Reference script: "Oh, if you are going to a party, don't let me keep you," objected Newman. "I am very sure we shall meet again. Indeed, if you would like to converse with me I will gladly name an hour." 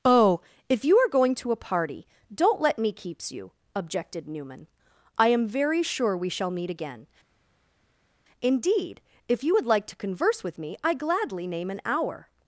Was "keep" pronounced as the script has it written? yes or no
no